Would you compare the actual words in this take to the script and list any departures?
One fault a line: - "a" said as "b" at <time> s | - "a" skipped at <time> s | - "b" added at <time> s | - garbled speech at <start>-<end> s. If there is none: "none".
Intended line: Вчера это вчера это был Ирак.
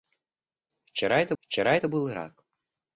none